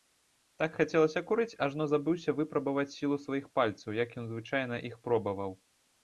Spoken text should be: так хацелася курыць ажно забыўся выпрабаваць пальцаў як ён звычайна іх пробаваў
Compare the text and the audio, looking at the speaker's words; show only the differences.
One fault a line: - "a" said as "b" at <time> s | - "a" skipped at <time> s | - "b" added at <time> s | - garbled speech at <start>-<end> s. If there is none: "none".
- "сілу сваіх" added at 2.9 s